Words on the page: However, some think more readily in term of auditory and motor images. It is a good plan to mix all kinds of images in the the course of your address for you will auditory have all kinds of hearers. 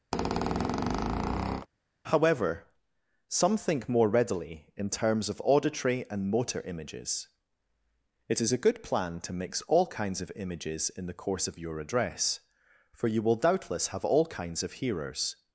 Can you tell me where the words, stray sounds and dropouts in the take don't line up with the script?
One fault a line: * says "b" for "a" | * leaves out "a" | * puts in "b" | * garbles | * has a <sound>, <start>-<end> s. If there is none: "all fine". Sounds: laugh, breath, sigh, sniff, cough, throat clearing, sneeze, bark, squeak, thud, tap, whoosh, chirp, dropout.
* has a squeak, 0.1-1.7 s
* says "terms" for "term"
* leaves out "the"
* says "doubtless" for "auditory"